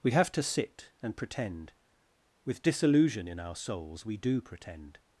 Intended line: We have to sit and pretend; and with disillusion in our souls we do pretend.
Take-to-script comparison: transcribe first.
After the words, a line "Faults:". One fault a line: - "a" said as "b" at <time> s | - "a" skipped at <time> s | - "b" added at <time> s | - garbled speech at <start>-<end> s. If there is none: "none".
We have to sit and pretend; with disillusion in our souls we do pretend.
Faults:
- "and" skipped at 1.7 s